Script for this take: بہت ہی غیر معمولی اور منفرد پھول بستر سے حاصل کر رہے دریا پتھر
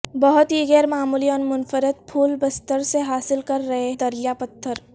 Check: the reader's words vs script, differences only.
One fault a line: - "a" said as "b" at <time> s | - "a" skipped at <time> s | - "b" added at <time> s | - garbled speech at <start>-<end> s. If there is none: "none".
none